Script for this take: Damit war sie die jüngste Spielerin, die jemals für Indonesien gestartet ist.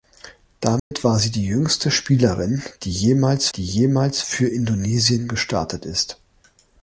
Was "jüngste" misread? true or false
false